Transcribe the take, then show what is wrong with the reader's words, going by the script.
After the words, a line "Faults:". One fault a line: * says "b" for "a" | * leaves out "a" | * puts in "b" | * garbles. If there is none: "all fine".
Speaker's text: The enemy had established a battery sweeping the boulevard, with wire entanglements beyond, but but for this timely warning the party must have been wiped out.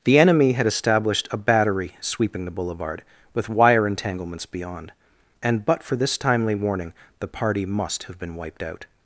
The enemy had established a battery sweeping the boulevard, with wire entanglements beyond, and but for this timely warning the party must have been wiped out.
Faults:
* says "and" for "but"